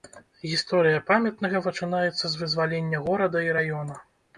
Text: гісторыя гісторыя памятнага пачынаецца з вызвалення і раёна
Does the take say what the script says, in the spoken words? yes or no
no